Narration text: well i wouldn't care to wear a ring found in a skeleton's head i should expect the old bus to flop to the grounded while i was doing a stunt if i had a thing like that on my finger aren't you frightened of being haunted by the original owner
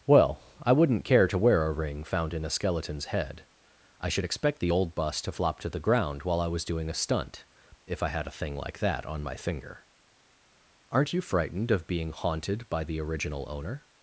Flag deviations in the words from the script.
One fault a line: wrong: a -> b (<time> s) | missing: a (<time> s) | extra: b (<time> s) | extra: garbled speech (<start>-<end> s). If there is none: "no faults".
wrong: grounded -> ground (5.8 s)